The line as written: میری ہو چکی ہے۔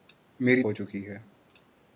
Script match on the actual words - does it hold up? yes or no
yes